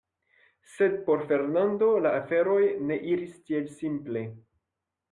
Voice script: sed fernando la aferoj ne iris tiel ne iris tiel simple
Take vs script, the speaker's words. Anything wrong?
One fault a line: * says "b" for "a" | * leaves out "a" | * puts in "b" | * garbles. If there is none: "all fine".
* puts in "por"
* leaves out "ne iris tiel"